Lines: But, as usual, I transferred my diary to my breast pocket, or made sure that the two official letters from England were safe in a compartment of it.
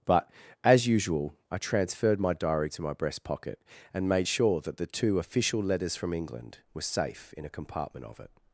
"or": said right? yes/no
no